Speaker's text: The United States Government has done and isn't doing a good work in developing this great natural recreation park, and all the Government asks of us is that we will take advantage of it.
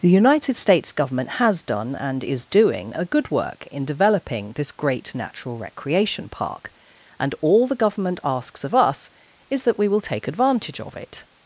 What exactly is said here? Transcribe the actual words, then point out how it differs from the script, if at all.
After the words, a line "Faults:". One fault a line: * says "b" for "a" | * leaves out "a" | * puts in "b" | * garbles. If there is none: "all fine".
The United States Government has done and is doing a good work in developing this great natural recreation park, and all the Government asks of us is that we will take advantage of it.
Faults:
* says "is" for "isn't"